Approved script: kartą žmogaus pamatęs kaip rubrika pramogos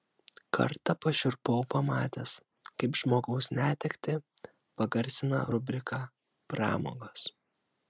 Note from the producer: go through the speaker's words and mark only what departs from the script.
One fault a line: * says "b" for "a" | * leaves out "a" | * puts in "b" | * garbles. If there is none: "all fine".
* says "pašiurpau" for "žmogaus"
* puts in "žmogaus netektį pagarsina"